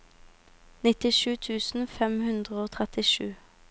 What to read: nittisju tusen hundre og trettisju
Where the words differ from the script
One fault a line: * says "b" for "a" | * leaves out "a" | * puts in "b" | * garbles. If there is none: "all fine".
* puts in "fem"